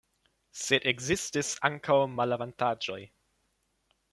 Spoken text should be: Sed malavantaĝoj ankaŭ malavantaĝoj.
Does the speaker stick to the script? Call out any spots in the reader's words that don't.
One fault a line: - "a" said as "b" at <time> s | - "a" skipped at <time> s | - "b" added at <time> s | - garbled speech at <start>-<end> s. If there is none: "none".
- "malavantaĝoj" said as "ekzistis" at 0.9 s